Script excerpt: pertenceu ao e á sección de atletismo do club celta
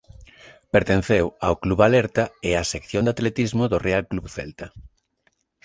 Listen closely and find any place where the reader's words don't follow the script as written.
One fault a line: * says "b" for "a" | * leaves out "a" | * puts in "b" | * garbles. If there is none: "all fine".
* puts in "club alerta"
* puts in "real"